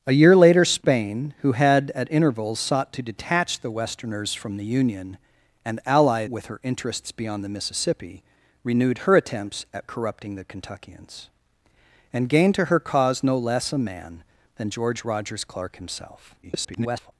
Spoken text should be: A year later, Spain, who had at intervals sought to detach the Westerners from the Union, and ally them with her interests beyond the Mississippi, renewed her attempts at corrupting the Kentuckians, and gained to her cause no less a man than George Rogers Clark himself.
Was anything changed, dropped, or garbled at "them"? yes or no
yes